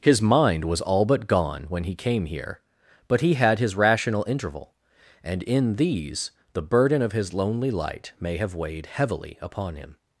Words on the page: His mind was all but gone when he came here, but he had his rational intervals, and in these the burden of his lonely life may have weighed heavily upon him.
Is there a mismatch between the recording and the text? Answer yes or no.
yes